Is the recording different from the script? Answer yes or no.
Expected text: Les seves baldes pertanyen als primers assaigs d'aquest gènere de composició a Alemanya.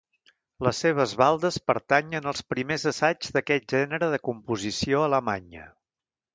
no